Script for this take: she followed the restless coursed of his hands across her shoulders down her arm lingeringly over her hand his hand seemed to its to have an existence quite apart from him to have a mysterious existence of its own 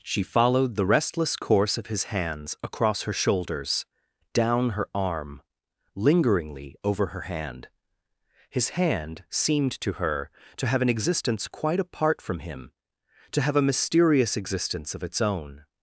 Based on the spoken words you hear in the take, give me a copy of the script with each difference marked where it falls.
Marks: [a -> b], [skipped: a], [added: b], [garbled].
she followed the restless [coursed -> course] of his hands across her shoulders down her arm lingeringly over her hand his hand seemed to [its -> her] to have an existence quite apart from him to have a mysterious existence of its own